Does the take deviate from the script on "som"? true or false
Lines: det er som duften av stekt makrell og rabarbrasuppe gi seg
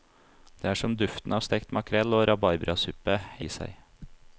false